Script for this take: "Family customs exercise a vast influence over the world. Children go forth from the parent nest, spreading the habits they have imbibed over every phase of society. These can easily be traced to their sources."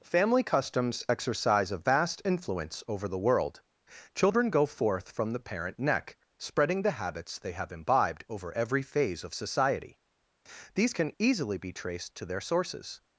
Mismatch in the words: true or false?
true